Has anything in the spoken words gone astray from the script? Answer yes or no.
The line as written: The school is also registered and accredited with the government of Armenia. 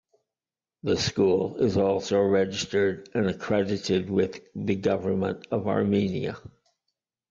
no